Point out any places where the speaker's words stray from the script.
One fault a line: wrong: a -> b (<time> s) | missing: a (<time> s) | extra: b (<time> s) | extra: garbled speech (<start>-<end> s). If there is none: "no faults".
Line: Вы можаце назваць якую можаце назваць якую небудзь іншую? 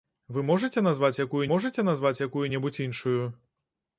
no faults